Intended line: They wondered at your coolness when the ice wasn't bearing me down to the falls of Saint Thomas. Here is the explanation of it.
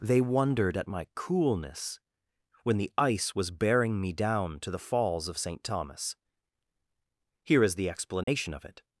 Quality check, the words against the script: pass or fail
fail